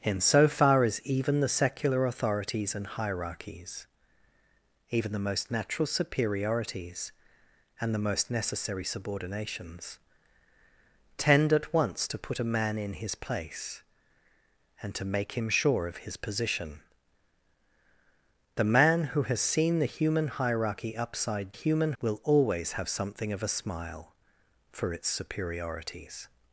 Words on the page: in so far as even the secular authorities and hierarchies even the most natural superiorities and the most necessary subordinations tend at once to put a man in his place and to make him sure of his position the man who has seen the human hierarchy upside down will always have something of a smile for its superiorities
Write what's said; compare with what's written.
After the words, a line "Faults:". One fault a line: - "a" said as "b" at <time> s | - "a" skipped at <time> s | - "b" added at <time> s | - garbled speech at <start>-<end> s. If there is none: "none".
in so far as even the secular authorities and hierarchies even the most natural superiorities and the most necessary subordinations tend at once to put a man in his place and to make him sure of his position the man who has seen the human hierarchy upside human will always have something of a smile for its superiorities
Faults:
- "down" said as "human" at 21.5 s